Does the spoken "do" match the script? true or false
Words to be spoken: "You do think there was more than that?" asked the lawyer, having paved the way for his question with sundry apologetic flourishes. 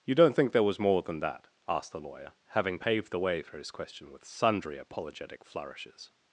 false